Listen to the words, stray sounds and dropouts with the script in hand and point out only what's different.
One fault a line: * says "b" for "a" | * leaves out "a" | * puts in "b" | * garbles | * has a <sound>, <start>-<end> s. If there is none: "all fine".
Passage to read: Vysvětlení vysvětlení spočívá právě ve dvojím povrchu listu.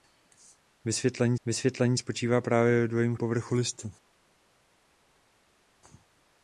all fine